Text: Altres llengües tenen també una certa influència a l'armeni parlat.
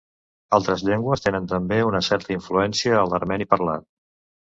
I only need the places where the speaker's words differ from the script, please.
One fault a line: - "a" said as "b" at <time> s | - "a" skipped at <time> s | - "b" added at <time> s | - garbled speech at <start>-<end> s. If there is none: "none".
none